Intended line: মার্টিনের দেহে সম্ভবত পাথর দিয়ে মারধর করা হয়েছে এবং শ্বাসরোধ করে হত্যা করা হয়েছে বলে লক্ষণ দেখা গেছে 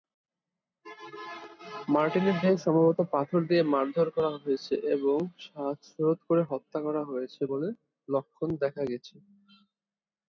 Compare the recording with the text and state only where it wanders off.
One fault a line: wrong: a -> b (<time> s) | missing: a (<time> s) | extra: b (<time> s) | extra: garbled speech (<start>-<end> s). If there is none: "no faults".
no faults